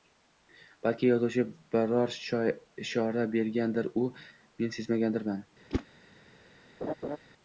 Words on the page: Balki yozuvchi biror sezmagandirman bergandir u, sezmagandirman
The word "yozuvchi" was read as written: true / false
true